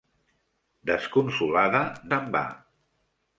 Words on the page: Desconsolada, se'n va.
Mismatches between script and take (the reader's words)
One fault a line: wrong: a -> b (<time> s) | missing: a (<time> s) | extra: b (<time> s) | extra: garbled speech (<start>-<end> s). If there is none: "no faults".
no faults